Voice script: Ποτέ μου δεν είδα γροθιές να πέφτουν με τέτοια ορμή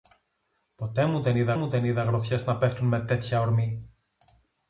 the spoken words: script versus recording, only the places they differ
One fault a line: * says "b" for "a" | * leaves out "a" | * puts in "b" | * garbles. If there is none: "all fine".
* puts in "μου δεν είδα"